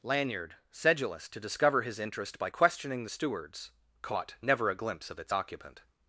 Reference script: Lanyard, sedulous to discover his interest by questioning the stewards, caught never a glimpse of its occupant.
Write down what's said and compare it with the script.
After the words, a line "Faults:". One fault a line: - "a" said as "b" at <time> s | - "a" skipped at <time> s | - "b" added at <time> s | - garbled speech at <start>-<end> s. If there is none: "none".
Lanyard, sedulous to discover his interest by questioning the stewards, caught never a glimpse of its occupant.
Faults:
none